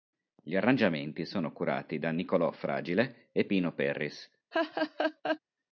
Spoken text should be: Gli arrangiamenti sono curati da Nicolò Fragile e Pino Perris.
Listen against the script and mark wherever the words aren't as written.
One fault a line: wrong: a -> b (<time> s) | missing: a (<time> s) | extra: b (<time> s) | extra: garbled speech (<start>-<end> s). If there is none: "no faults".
no faults